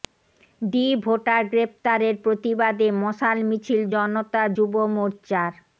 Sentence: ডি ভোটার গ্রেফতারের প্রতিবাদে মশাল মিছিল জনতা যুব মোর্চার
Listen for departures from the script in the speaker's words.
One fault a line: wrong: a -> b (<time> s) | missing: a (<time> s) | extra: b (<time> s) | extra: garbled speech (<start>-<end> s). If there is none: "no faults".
no faults